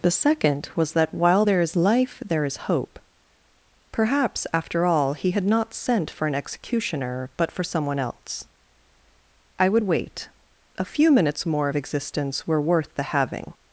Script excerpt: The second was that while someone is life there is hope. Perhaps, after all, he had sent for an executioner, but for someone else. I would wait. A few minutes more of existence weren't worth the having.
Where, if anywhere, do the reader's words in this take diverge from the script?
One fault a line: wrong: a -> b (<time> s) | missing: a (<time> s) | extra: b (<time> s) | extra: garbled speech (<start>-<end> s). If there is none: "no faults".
wrong: someone -> there (1.4 s)
extra: not (5.4 s)
wrong: weren't -> were (12.5 s)